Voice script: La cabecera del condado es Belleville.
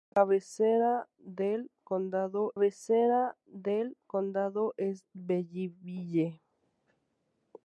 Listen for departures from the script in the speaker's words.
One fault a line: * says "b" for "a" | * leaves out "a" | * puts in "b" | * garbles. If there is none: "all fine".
* puts in "cabecera del condado"